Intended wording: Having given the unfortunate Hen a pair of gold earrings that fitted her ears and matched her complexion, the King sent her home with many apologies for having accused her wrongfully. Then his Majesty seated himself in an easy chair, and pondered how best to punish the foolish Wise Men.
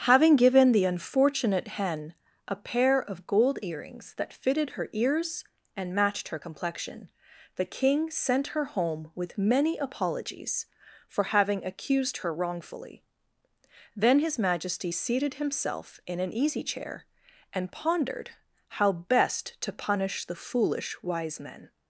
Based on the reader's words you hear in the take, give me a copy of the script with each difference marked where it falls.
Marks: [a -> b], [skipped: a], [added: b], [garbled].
Having given the unfortunate Hen a pair of gold earrings that fitted her ears and matched her complexion, the King sent her home with many apologies for having accused her wrongfully. Then his Majesty seated himself in an easy chair, and pondered how best to punish the foolish Wise Men.